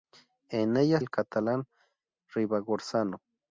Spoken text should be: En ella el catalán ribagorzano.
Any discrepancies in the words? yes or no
no